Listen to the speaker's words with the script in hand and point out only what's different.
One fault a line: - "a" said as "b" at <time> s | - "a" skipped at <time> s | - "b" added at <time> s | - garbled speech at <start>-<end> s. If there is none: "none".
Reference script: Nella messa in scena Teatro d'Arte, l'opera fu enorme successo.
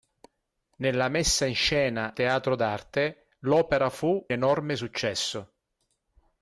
none